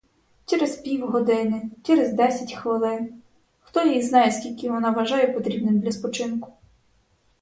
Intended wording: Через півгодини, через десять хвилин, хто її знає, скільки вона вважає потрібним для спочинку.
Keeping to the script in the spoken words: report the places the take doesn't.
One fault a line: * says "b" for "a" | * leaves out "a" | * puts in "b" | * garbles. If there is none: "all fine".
all fine